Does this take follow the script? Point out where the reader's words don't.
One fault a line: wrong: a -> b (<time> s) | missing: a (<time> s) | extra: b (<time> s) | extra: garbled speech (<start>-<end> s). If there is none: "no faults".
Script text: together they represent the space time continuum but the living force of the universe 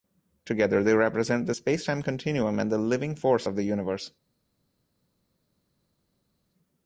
wrong: but -> and (2.6 s)